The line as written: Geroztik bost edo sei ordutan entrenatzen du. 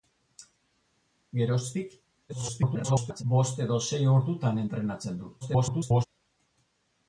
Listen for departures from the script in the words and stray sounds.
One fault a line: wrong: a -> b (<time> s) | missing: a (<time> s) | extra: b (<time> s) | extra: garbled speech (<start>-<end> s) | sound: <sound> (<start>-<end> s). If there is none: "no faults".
extra: garbled speech (2.3-3.2 s)
extra: garbled speech (5.4-6.1 s)